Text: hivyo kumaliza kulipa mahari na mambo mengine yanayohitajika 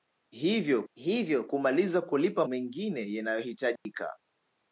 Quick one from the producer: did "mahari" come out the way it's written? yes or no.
no